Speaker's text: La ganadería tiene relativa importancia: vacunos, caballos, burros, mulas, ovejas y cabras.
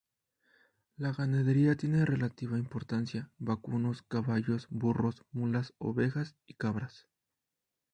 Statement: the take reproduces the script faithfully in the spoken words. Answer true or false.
true